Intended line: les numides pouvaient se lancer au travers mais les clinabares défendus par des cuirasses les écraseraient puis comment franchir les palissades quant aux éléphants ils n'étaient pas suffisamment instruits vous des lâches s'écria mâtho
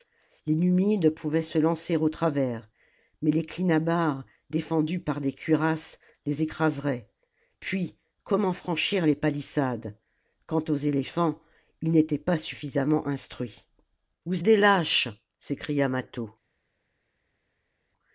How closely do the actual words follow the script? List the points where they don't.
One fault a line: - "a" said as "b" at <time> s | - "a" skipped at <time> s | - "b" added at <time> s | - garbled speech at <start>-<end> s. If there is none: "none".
none